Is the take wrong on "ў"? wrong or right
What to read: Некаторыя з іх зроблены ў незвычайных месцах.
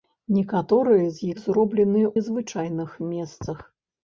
wrong